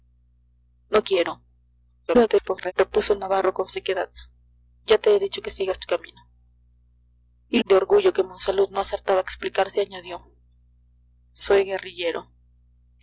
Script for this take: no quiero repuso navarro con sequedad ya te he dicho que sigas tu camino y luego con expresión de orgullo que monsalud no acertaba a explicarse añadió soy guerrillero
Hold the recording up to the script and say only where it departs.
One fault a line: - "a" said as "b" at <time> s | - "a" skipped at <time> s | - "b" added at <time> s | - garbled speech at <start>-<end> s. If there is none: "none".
- garbled speech at 2.1-2.7 s
- "luego con expresión" skipped at 7.6 s